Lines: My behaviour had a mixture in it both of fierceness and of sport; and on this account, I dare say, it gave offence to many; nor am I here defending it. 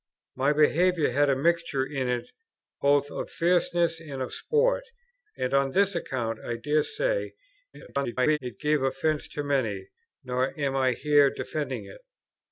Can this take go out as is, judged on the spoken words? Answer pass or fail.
fail